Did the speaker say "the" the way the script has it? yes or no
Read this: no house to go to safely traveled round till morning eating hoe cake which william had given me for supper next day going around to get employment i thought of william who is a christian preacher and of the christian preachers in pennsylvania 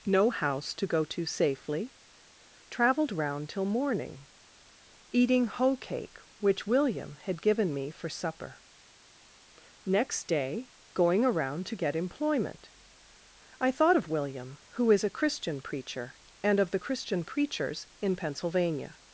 yes